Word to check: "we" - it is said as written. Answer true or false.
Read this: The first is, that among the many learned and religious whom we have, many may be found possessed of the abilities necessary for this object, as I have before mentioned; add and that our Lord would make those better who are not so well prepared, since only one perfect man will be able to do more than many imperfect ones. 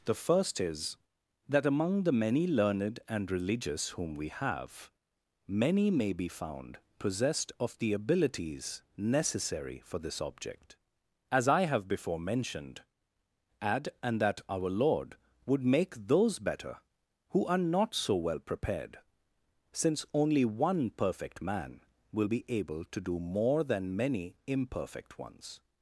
true